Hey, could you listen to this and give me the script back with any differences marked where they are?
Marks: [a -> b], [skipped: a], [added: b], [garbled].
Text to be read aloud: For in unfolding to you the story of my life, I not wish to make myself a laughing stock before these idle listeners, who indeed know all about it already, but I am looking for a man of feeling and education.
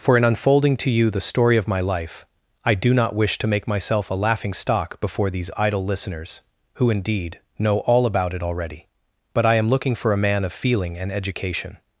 For in unfolding to you the story of my life, I [added: do] not wish to make myself a laughing stock before these idle listeners, who indeed know all about it already, but I am looking for a man of feeling and education.